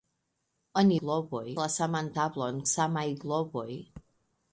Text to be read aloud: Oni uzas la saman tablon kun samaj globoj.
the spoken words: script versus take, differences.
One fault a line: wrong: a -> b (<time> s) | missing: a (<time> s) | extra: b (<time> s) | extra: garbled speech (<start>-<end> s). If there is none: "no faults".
wrong: uzas -> globoj (1.0 s)
missing: kun (2.6 s)